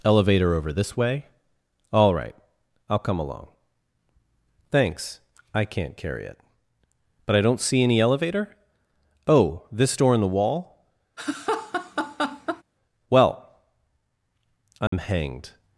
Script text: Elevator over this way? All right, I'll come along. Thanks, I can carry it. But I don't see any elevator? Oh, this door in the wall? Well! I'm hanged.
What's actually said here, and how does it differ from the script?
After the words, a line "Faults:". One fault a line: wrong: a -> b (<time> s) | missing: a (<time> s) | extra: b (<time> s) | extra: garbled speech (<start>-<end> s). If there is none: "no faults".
Elevator over this way? All right, I'll come along. Thanks, I can't carry it. But I don't see any elevator? Oh, this door in the wall? Well! I'm hanged.
Faults:
wrong: can -> can't (5.7 s)